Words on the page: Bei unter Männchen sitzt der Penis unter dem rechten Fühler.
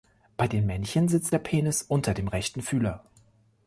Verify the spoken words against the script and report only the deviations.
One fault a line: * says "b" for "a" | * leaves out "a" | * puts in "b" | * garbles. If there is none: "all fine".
* says "den" for "unter"